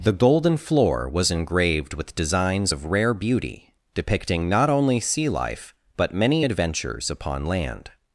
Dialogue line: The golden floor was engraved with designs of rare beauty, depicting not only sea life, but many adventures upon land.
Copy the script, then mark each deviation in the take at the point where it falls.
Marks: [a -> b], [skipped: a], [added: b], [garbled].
The golden floor was engraved with designs of rare beauty, depicting not only sea life, but many adventures upon land.